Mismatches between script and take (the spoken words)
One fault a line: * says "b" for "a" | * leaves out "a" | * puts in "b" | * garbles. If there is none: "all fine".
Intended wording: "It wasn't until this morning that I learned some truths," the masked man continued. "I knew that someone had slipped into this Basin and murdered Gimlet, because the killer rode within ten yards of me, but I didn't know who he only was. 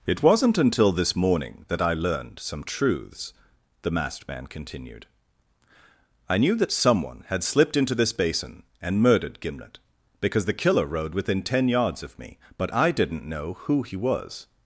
* leaves out "only"